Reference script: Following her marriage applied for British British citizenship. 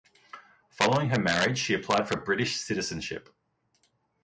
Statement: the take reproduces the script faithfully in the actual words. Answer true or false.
false